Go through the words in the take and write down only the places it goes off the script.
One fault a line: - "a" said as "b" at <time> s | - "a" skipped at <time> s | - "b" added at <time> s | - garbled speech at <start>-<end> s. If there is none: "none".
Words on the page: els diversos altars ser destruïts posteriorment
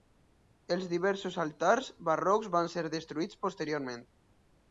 - "barrocs van" added at 2.1 s